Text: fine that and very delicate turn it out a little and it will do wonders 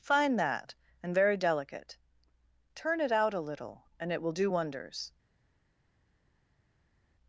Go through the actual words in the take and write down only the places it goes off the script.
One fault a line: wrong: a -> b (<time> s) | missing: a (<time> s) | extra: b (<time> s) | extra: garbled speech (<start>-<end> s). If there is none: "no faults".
no faults